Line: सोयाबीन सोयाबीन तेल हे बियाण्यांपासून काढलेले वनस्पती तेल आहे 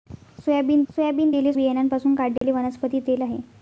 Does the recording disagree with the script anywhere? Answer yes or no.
no